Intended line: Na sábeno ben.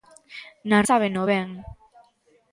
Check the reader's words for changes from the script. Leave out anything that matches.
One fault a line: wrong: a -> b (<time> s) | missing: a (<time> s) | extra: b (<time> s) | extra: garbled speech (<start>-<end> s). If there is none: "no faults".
no faults